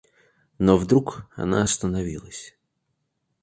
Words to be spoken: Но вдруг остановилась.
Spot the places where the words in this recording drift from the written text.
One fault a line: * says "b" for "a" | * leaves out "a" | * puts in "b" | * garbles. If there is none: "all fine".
* puts in "она"